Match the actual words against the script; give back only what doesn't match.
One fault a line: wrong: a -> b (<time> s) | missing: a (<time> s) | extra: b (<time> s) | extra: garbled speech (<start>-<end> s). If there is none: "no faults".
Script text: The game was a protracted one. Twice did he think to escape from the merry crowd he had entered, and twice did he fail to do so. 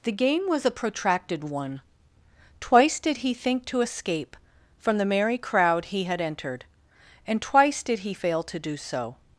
no faults